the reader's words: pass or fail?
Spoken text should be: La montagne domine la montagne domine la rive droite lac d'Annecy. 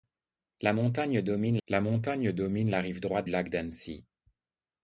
pass